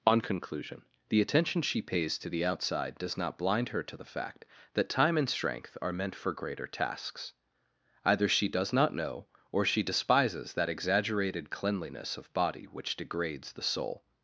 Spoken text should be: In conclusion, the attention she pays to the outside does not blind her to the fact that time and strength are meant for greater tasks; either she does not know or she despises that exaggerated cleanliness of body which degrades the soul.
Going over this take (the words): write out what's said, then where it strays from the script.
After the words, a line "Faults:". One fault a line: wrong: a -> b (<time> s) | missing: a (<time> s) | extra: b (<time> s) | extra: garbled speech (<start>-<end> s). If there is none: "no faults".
On conclusion, the attention she pays to the outside does not blind her to the fact that time and strength are meant for greater tasks; either she does not know or she despises that exaggerated cleanliness of body which degrades the soul.
Faults:
wrong: In -> On (0.1 s)